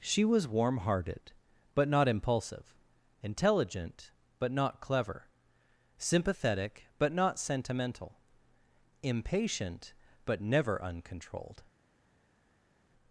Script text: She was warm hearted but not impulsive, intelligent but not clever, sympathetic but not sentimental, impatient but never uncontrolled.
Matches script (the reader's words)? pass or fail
pass